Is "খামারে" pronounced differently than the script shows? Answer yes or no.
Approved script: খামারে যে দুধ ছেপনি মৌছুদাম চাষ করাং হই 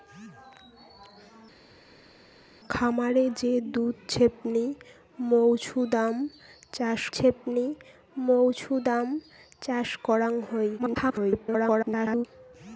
no